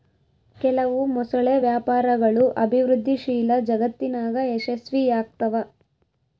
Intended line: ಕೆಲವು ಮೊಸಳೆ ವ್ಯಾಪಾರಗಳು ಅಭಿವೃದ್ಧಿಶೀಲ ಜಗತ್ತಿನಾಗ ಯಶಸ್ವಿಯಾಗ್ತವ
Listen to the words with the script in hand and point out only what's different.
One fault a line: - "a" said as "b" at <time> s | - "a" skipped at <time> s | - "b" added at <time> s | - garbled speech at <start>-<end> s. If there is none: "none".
none